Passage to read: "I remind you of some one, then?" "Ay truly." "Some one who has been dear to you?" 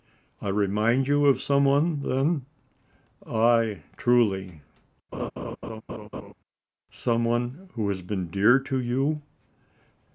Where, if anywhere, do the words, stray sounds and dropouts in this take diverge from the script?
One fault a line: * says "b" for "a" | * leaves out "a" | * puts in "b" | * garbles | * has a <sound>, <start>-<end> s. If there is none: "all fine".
* has a laugh, 5.1-6.3 s